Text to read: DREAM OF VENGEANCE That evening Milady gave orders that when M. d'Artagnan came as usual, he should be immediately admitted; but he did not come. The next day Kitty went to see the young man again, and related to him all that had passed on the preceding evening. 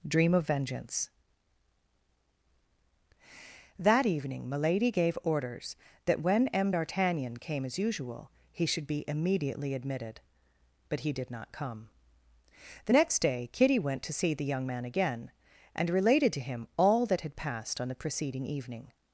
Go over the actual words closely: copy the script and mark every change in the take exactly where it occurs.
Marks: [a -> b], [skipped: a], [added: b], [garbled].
DREAM OF VENGEANCE That evening Milady gave orders that when M. d'Artagnan came as usual, he should be immediately admitted; but he did not come. The next day Kitty went to see the young man again, and related to him all that had passed on the preceding evening.